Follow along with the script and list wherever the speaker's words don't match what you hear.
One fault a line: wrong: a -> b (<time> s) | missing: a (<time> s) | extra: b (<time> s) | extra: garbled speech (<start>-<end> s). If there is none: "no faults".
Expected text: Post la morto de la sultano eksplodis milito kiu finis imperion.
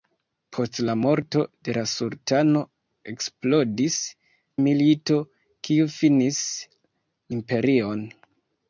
no faults